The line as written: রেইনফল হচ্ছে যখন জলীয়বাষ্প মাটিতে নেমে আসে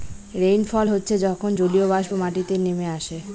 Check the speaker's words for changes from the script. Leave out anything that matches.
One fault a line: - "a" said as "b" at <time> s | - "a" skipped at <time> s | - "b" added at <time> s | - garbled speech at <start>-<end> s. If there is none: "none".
none